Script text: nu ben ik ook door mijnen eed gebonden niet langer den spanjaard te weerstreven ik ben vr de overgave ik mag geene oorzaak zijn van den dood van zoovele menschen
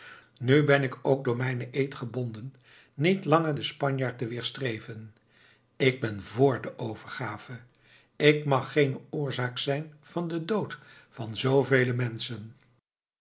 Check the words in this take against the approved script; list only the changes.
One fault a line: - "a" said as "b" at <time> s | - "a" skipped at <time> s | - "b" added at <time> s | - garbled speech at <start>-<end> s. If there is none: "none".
none